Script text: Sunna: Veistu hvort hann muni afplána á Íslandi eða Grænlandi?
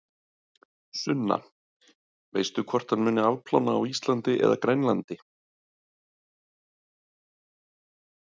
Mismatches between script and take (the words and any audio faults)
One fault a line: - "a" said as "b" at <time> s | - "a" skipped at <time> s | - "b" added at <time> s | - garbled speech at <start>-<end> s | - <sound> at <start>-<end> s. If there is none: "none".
none